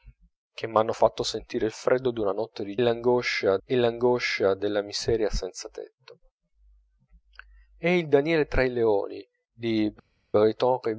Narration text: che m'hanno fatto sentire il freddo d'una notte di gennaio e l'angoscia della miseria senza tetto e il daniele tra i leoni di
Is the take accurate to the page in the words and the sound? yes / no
no